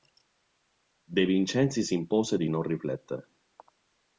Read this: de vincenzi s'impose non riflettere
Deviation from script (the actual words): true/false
true